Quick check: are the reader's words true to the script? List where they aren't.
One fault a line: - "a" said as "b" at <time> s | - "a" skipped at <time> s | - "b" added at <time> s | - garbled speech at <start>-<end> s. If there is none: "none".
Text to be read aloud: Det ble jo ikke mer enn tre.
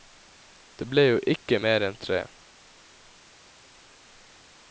none